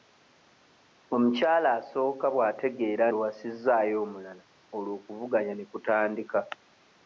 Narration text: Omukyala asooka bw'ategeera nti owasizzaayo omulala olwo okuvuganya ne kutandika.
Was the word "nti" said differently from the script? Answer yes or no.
yes